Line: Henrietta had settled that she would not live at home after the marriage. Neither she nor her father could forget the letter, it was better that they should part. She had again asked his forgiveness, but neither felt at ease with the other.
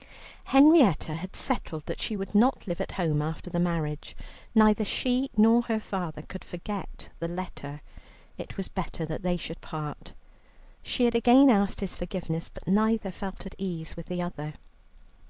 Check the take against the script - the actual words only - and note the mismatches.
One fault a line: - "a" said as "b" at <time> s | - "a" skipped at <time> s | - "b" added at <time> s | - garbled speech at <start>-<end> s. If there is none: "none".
none